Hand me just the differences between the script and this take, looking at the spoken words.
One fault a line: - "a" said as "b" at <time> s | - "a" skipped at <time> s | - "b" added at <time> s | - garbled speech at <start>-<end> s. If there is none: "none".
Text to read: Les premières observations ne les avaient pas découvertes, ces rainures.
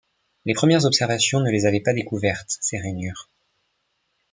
none